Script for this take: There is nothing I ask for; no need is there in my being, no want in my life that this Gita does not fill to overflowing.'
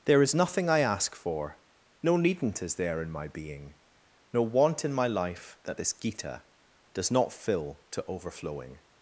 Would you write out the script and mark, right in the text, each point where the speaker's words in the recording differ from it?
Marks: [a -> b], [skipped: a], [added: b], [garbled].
There is nothing I ask for; no [need -> needn't] is there in my being, no want in my life that this Gita does not fill to overflowing.'